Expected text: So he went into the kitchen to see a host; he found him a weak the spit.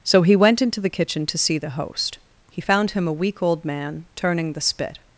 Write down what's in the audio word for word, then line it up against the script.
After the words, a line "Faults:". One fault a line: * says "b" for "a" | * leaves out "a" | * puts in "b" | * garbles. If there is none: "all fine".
So he went into the kitchen to see the host; he found him a weak old man turning the spit.
Faults:
* says "the" for "a"
* puts in "old man turning"